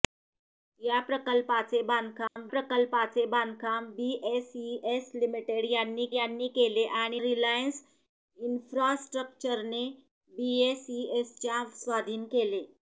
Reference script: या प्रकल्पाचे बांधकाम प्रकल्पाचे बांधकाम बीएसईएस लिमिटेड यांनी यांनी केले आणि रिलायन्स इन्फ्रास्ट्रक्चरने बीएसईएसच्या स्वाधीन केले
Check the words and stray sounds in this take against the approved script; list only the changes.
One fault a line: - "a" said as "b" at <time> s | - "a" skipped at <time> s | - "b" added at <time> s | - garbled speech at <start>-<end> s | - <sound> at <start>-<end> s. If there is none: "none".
- dropout at 2.3-2.4 s